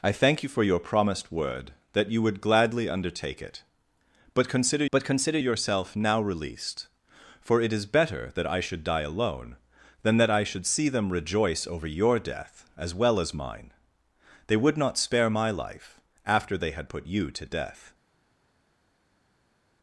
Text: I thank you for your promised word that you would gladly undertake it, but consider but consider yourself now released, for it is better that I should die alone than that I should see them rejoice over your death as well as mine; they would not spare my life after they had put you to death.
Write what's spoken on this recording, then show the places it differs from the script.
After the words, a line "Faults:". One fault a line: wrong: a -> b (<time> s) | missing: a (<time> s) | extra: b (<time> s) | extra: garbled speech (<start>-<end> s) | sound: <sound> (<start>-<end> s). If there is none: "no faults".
I thank you for your promised word that you would gladly undertake it, but consider but consider yourself now released, for it is better that I should die alone than that I should see them rejoice over your death as well as mine; they would not spare my life after they had put you to death.
Faults:
no faults